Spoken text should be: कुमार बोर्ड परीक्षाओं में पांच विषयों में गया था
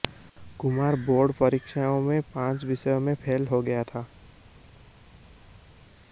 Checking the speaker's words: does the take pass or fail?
fail